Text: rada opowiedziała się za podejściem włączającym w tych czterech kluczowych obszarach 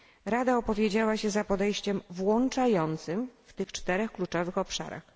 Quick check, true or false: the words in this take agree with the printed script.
true